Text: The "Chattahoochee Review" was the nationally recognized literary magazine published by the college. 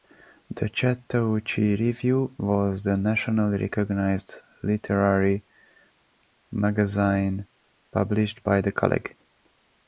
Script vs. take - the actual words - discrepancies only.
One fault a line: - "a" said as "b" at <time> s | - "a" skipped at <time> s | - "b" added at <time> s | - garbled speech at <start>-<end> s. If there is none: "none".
none